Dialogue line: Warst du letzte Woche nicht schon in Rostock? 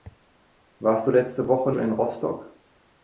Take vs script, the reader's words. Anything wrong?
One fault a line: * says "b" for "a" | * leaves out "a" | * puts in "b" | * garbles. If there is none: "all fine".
* leaves out "nicht"